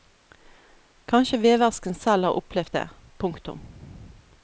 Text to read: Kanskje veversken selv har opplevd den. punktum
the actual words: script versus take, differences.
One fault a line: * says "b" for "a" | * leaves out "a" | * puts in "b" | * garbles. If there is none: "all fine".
* says "det" for "den"